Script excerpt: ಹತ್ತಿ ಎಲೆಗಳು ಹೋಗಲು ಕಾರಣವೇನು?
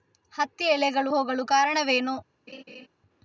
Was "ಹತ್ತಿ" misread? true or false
false